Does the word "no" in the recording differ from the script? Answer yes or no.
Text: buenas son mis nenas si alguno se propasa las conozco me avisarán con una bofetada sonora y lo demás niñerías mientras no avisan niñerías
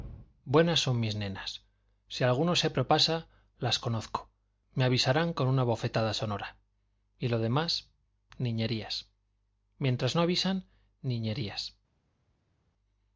no